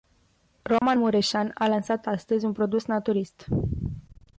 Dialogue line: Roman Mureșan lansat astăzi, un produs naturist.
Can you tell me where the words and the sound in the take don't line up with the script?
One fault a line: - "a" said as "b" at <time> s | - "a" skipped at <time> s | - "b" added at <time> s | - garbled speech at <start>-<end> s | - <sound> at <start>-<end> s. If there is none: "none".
- dropout at 0.8-0.8 s
- "a" added at 1.5 s